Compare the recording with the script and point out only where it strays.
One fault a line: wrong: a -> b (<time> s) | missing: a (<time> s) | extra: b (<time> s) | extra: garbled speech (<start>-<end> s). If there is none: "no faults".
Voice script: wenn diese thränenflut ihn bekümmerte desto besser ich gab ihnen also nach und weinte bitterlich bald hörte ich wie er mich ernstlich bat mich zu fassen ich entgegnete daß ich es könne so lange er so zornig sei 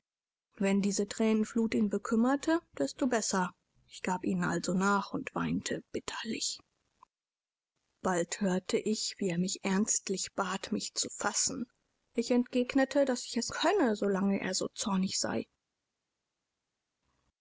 no faults